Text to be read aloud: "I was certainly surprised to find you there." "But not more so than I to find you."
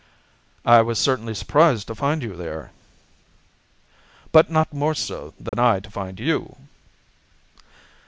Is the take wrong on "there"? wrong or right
right